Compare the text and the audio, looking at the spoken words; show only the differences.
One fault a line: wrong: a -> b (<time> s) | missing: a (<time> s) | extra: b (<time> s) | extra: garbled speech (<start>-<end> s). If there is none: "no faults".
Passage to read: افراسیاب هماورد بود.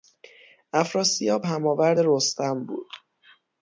extra: رستم (2.0 s)